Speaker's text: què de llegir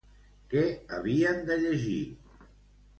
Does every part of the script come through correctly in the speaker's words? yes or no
no